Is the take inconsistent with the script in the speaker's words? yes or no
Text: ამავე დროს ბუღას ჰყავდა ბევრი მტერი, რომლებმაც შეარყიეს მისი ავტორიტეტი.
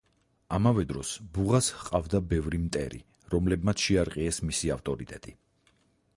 no